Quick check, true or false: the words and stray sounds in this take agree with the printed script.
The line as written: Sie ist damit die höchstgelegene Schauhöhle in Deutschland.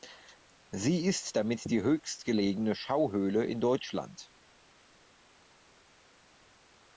true